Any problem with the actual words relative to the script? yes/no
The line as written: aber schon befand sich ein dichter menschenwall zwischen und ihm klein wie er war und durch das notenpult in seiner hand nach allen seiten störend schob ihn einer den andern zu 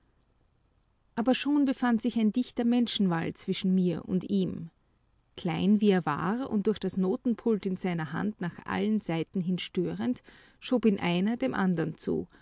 yes